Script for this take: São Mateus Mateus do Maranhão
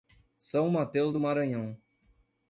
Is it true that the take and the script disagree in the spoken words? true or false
true